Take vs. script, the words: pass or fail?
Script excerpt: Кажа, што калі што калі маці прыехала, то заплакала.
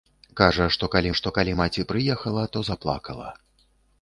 pass